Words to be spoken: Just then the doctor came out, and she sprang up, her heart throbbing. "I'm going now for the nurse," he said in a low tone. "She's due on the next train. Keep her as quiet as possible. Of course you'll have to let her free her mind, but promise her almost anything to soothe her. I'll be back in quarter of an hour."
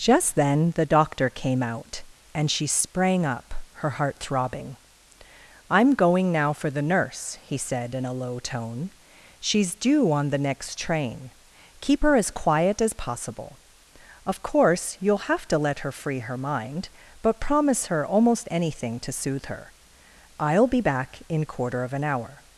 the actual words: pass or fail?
pass